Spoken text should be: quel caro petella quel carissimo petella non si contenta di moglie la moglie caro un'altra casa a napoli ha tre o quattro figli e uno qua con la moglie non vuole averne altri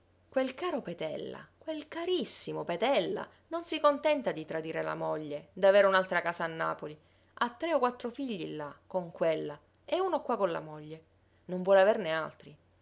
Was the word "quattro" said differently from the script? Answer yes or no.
no